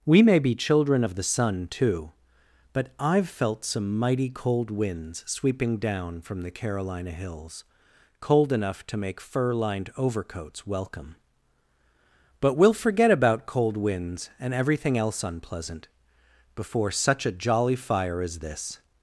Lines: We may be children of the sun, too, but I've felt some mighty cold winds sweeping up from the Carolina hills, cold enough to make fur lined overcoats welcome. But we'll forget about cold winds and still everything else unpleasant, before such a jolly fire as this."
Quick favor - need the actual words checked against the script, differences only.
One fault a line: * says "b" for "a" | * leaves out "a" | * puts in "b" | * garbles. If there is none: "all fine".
* says "down" for "up"
* leaves out "still"